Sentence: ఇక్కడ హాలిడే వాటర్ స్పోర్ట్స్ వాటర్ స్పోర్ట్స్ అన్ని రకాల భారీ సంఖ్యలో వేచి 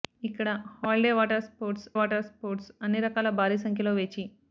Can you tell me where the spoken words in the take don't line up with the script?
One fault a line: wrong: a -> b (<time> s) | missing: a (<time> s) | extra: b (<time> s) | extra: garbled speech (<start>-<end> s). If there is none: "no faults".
no faults